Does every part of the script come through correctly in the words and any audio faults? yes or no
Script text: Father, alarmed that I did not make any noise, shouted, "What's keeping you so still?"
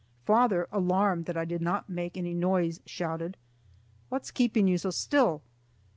yes